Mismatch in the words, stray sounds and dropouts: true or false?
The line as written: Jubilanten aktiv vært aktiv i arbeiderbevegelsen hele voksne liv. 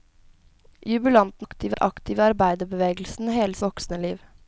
false